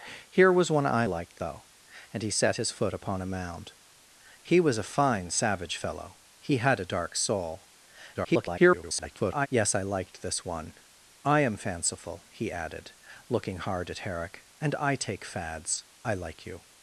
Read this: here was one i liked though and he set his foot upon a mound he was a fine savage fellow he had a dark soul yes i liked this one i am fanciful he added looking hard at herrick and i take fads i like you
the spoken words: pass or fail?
fail